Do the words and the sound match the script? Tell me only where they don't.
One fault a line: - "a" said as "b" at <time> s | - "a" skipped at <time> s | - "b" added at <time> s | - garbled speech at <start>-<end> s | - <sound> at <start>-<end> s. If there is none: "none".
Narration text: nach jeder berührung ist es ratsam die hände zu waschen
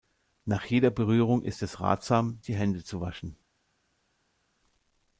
none